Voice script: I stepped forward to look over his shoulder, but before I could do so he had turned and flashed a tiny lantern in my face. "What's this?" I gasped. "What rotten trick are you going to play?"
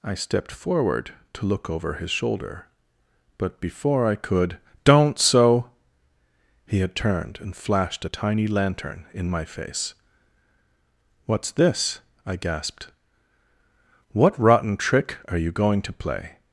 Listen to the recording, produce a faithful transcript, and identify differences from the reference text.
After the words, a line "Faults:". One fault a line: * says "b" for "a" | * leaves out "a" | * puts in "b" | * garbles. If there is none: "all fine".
I stepped forward to look over his shoulder, but before I could don't so he had turned and flashed a tiny lantern in my face. "What's this?" I gasped. "What rotten trick are you going to play?"
Faults:
* says "don't" for "do"